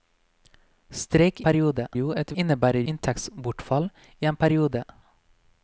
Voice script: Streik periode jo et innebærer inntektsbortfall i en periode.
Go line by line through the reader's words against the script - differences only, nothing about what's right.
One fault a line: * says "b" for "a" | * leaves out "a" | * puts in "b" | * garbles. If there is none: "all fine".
all fine